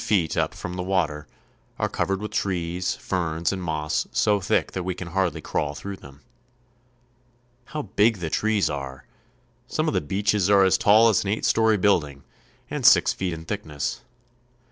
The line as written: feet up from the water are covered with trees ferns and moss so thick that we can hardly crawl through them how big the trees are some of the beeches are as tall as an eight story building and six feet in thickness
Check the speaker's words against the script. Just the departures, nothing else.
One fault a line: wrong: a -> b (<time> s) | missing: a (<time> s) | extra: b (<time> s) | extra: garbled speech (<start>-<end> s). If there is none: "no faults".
no faults